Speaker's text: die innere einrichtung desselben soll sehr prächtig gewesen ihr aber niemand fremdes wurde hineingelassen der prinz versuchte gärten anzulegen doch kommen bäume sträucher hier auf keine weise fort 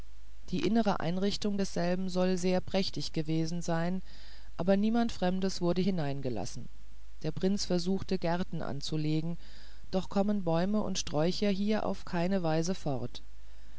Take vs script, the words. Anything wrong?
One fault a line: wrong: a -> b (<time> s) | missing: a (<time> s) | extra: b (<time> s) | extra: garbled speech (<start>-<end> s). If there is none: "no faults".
wrong: ihr -> sein (3.6 s)
extra: und (10.8 s)